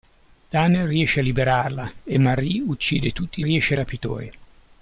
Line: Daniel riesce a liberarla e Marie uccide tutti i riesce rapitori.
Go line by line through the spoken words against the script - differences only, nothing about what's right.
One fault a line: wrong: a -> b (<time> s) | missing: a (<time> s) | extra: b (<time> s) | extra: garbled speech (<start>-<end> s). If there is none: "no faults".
no faults